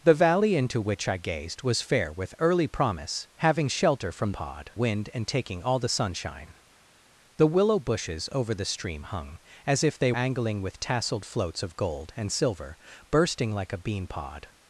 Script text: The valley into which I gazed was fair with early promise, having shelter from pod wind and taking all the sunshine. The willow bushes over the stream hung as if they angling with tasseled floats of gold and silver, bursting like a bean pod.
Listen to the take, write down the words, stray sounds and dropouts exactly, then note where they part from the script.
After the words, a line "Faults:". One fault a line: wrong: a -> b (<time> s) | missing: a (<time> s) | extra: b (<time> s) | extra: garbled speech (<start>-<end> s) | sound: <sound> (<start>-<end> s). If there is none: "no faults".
The valley into which I gazed was fair with early promise, having shelter from pod wind and taking all the sunshine. The willow bushes over the stream hung as if they angling with tasseled floats of gold and silver, bursting like a bean pod.
Faults:
no faults